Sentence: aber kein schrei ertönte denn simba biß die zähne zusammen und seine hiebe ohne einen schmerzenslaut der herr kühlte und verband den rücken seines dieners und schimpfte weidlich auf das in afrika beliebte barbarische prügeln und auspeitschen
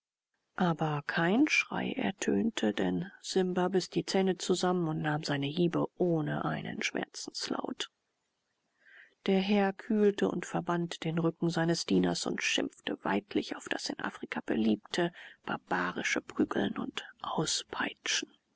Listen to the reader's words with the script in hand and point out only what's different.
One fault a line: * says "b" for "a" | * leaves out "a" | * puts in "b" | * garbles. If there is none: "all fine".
* puts in "nahm"